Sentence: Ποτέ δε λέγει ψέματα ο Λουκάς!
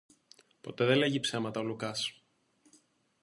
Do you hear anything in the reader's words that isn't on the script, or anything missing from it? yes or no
no